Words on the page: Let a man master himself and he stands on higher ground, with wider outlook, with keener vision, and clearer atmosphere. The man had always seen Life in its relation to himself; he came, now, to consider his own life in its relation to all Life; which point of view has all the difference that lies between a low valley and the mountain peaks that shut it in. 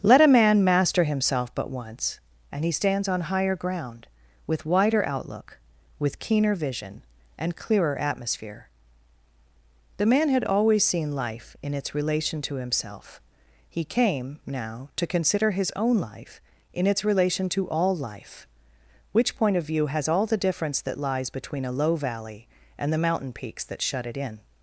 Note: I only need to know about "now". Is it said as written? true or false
true